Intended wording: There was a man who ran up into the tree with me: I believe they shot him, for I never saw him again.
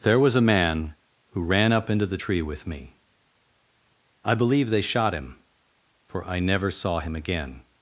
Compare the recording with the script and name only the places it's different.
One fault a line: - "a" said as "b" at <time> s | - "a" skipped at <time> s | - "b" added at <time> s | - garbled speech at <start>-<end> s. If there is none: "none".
none